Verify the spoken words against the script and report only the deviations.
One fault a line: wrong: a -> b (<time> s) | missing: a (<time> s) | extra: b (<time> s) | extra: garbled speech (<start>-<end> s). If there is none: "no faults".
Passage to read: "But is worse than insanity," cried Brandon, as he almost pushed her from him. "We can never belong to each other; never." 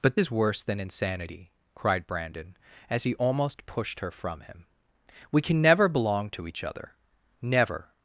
no faults